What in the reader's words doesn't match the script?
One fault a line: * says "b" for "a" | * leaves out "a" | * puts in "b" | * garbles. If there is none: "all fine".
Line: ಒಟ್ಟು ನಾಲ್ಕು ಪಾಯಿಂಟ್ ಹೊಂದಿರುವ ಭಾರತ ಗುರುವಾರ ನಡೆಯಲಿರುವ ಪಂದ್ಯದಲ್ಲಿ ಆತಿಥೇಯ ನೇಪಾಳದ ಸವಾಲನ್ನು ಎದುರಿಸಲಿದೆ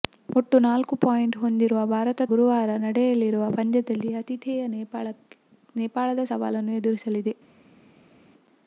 all fine